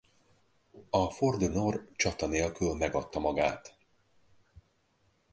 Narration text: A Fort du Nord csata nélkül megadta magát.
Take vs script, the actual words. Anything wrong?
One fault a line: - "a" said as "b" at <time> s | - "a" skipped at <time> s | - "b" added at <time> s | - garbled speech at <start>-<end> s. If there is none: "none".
none